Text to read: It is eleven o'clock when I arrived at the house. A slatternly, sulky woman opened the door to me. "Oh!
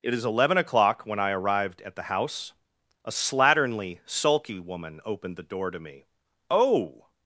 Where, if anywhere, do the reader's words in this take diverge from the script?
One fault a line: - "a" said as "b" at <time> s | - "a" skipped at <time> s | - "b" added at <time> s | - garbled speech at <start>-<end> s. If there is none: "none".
none